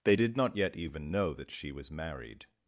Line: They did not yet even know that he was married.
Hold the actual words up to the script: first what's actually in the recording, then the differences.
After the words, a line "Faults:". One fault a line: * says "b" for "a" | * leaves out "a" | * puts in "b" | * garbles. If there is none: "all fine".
They did not yet even know that she was married.
Faults:
* says "she" for "he"